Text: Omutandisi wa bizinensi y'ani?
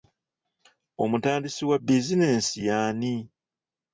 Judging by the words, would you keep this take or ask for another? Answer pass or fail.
pass